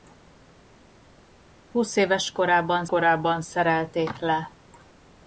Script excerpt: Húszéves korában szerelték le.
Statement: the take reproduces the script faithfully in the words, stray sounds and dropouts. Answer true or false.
false